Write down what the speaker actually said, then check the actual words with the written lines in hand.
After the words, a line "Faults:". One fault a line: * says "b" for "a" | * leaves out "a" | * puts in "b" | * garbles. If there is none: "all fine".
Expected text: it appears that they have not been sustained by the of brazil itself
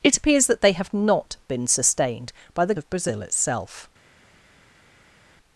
it appears that they have not been sustained by the of brazil itself
Faults:
all fine